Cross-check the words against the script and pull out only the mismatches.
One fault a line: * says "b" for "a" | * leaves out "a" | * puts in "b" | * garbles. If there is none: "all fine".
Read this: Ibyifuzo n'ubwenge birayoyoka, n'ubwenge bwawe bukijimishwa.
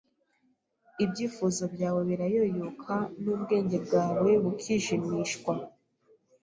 * says "byawe" for "n'ubwenge"